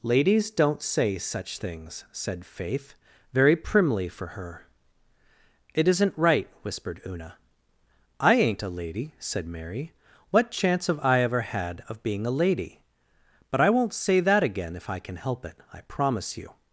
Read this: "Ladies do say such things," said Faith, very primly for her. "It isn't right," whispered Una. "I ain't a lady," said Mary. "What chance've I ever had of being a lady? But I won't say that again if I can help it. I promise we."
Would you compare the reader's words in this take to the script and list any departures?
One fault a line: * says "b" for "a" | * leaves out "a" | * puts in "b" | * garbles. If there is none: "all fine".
* says "don't" for "do"
* says "you" for "we"